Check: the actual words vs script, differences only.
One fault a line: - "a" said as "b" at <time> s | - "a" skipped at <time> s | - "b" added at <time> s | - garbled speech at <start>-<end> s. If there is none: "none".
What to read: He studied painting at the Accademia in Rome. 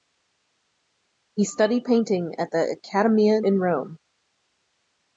none